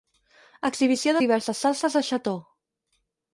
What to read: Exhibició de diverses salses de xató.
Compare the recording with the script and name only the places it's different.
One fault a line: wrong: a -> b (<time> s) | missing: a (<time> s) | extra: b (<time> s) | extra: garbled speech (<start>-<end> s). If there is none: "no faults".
no faults